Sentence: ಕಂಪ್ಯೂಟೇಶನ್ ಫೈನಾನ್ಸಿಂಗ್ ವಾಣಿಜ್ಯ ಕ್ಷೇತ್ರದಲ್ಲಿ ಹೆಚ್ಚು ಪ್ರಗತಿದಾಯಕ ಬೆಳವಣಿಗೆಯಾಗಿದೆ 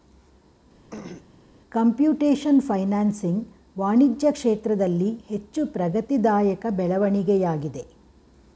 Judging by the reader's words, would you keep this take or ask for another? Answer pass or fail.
pass